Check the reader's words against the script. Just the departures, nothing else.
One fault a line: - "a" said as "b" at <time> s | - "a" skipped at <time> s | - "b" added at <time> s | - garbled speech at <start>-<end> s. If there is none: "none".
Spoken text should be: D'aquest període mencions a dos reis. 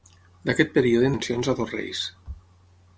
none